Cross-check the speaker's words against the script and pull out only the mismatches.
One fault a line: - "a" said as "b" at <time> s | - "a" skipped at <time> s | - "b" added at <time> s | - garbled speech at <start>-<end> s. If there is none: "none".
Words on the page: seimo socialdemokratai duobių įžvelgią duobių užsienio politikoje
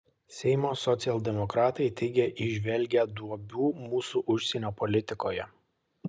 - "duobių" said as "teigia" at 2.0 s
- "mūsų" added at 3.9 s